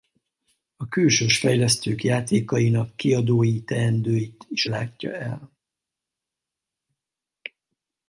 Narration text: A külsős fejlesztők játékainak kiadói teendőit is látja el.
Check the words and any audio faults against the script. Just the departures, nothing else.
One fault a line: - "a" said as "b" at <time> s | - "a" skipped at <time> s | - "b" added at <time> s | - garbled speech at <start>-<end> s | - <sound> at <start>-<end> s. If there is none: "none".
none